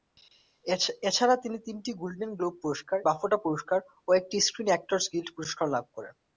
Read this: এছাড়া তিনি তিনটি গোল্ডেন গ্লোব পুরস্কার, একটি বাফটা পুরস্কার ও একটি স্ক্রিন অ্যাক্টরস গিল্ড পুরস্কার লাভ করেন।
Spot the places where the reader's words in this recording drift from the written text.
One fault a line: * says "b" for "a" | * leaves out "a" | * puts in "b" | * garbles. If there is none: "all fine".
* leaves out "একটি"